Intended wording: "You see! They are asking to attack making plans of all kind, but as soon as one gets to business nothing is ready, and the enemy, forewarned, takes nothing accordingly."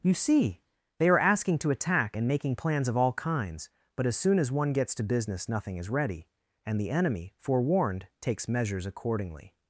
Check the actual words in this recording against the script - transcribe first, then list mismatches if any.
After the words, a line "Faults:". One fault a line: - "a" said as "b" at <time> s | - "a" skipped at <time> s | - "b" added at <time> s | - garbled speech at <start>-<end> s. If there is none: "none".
"You see! They are asking to attack and making plans of all kinds, but as soon as one gets to business nothing is ready, and the enemy, forewarned, takes measures accordingly."
Faults:
- "and" added at 2.1 s
- "kind" said as "kinds" at 3.1 s
- "nothing" said as "measures" at 8.5 s